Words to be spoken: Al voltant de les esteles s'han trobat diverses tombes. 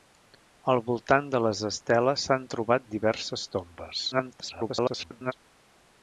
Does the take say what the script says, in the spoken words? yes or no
no